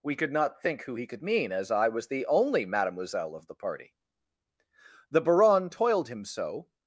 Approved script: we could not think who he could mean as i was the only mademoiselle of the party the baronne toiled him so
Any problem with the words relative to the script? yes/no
no